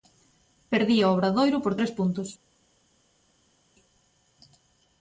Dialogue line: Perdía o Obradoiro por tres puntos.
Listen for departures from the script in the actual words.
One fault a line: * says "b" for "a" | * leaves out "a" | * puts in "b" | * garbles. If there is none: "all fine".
all fine